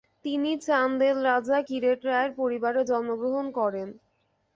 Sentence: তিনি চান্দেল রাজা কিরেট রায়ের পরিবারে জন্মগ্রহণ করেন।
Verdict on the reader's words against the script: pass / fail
pass